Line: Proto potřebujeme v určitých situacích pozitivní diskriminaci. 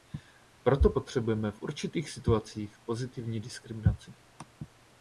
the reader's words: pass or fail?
pass